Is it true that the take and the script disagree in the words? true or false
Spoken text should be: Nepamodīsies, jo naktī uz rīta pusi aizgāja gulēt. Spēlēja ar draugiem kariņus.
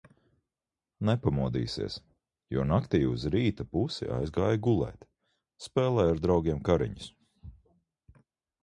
false